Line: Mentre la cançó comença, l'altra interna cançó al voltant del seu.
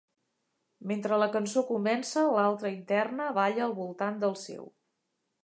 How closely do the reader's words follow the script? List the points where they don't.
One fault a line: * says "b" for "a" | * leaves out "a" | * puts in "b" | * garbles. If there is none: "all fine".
* says "balla" for "cançó"